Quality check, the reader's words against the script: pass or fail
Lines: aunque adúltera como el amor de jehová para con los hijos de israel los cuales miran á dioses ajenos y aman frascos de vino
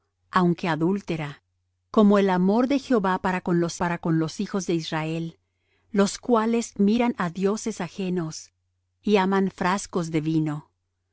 fail